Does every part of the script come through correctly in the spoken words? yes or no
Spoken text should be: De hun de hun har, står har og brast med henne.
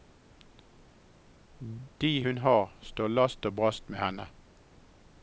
no